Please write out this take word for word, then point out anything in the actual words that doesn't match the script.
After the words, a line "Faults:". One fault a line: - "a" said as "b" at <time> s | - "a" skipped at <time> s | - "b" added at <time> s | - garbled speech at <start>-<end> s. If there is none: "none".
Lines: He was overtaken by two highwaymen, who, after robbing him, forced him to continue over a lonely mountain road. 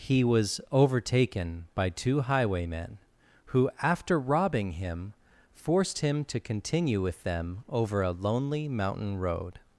He was overtaken by two highwaymen, who, after robbing him, forced him to continue with them over a lonely mountain road.
Faults:
- "with them" added at 7.0 s